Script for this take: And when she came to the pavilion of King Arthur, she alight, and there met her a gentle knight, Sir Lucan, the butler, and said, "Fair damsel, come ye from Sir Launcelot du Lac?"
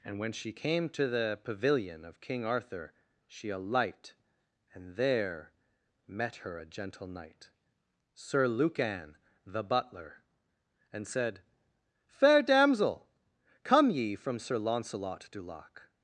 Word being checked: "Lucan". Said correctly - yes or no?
yes